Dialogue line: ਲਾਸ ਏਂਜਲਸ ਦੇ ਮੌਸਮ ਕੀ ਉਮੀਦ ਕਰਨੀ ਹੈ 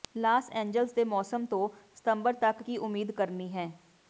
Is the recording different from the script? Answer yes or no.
yes